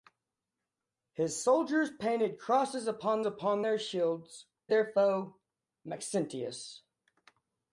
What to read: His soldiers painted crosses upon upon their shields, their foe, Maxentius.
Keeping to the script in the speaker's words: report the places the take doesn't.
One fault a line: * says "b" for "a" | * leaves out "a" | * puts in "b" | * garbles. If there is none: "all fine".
all fine